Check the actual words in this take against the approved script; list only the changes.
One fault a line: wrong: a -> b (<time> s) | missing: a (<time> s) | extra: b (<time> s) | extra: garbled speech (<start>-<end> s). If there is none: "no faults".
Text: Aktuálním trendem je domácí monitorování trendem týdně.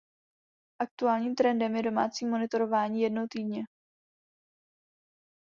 wrong: trendem -> jednou (3.0 s)